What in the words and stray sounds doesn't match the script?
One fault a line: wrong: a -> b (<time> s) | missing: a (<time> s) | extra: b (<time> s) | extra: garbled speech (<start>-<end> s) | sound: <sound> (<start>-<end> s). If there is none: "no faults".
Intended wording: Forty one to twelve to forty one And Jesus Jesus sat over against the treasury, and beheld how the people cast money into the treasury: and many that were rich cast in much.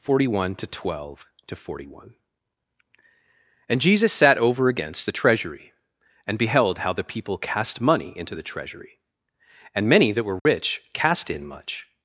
missing: Jesus (4.1 s)
sound: dropout (10.4-10.5 s)